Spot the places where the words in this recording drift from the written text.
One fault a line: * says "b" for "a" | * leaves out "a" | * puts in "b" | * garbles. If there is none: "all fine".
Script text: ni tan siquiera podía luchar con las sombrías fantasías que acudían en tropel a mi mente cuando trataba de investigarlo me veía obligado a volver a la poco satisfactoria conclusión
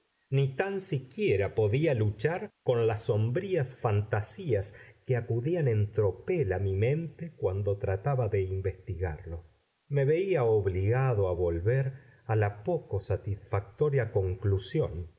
all fine